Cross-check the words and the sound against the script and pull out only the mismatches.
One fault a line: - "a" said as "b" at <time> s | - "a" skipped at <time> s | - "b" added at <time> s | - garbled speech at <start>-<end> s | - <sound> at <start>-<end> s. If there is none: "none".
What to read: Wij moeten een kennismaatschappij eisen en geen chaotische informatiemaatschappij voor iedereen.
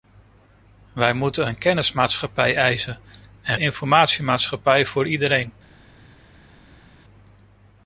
- "geen chaotische" skipped at 3.6 s